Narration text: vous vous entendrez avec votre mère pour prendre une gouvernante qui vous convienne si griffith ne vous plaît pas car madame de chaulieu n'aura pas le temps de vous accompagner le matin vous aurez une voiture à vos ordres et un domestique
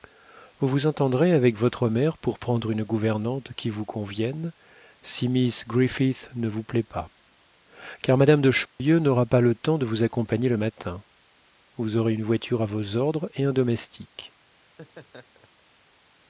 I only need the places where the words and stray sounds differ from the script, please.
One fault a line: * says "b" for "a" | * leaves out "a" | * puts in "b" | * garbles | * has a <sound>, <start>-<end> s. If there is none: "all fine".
* puts in "miss"
* has a dropout, 8.7-8.8 s
* has a laugh, 14.6-15.6 s